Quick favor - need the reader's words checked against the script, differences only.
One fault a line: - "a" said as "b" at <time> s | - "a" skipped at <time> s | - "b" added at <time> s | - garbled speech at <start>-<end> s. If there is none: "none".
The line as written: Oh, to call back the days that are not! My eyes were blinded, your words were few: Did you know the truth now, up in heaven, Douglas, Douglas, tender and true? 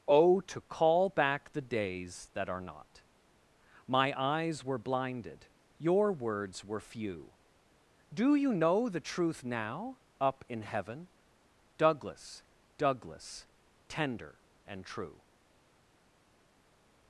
- "Did" said as "Do" at 8.1 s